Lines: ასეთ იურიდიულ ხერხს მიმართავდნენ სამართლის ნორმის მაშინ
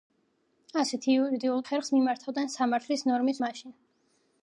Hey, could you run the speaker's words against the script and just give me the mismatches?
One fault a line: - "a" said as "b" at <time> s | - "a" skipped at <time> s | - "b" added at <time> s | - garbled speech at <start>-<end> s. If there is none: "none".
none